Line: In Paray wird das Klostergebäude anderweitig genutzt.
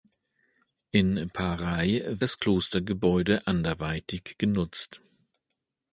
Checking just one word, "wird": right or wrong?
wrong